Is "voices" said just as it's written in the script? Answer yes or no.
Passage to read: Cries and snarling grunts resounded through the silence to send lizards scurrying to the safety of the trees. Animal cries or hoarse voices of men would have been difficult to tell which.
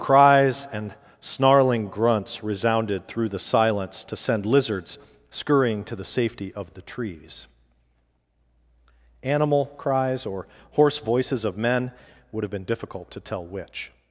yes